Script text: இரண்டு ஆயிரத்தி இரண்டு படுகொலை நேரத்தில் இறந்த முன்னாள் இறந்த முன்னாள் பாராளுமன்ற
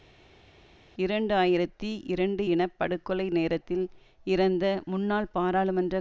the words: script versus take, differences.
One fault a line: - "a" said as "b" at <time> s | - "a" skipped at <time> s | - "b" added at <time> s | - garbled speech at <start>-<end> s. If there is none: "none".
- "இன" added at 2.5 s
- "இறந்த முன்னாள்" skipped at 5.3 s